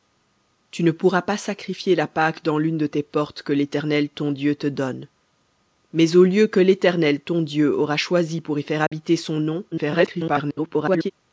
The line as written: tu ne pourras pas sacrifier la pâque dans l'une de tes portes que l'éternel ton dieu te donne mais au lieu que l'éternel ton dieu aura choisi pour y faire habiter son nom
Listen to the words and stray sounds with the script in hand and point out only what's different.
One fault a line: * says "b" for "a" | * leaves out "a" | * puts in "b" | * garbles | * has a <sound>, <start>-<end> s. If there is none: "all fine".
* has a dropout, 8.9-8.9 s
* garbles